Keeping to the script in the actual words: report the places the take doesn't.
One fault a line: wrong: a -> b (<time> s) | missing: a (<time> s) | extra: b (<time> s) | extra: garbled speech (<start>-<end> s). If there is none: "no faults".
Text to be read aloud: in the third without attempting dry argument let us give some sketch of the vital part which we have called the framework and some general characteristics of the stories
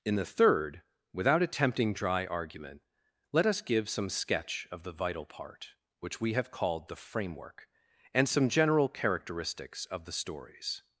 no faults